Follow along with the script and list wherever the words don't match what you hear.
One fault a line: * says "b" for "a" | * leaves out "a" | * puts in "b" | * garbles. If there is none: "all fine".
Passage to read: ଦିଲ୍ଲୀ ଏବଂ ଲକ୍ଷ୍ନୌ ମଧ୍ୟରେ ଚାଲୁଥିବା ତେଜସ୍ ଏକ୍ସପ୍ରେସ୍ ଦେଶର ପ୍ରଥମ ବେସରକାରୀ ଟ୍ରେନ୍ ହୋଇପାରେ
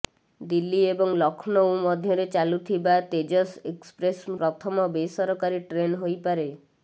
* leaves out "ଦେଶର"